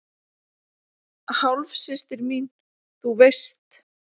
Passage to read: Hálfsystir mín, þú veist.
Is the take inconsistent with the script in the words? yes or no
no